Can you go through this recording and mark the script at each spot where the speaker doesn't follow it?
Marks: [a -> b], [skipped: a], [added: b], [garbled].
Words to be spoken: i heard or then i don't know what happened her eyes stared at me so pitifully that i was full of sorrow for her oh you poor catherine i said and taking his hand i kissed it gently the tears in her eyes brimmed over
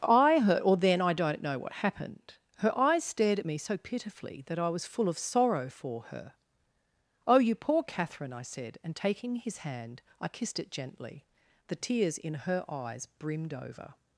i heard or then i don't know what happened her eyes stared at me so pitifully that i was full of sorrow for her oh you poor catherine i said and taking his hand i kissed it gently the tears in her eyes brimmed over